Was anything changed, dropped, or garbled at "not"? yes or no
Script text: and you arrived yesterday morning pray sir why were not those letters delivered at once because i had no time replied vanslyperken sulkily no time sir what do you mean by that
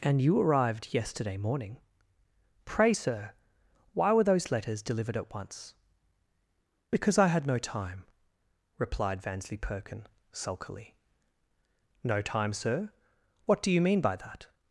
yes